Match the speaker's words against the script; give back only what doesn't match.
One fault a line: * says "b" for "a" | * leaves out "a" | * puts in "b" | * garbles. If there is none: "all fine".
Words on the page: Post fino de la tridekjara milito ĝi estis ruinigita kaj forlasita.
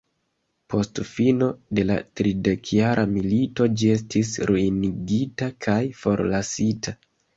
all fine